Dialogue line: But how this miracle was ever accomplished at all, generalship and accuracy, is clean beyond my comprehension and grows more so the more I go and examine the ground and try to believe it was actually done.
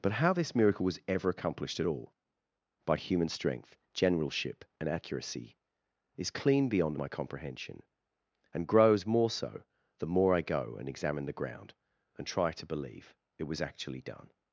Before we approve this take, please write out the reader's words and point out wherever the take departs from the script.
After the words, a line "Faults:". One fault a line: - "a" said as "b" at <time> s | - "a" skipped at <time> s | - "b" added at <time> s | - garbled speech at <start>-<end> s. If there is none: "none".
But how this miracle was ever accomplished at all, by human strength, generalship and accuracy, is clean beyond my comprehension and grows more so the more I go and examine the ground and try to believe it was actually done.
Faults:
- "by human strength" added at 2.8 s